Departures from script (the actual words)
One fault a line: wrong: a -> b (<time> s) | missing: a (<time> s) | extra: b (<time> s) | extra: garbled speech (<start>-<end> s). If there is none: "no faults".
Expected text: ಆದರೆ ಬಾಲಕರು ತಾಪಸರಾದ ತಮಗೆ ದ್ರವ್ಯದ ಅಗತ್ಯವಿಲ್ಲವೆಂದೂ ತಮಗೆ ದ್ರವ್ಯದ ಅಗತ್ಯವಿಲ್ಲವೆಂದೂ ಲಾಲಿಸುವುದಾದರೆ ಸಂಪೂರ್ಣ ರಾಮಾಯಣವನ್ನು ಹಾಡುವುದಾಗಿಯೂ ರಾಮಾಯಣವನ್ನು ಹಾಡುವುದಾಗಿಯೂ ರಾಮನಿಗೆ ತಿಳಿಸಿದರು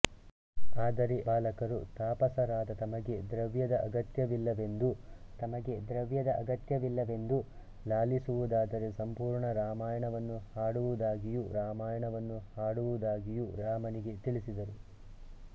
no faults